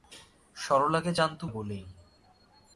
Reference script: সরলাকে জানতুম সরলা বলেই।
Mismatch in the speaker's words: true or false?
true